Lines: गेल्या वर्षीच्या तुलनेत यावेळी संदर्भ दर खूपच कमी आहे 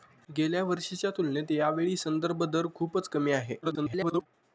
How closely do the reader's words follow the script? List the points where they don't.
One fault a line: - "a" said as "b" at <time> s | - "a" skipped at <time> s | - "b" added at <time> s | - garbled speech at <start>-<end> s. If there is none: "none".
- garbled speech at 3.6-4.3 s